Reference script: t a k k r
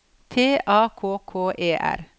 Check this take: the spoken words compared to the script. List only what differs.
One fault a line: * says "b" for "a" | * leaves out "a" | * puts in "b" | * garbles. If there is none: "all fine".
* puts in "e"